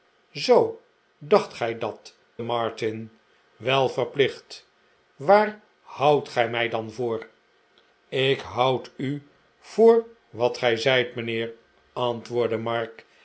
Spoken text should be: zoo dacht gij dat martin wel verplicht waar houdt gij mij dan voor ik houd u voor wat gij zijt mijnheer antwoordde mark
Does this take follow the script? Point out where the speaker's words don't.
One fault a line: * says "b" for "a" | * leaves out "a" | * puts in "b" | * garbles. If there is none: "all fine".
all fine